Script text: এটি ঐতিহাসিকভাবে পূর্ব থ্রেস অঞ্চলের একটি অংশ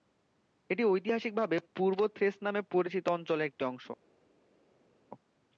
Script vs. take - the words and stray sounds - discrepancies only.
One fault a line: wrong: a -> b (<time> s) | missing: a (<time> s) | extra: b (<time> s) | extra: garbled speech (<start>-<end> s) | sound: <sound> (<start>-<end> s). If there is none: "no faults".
extra: নামে পরিচিত (2.4 s)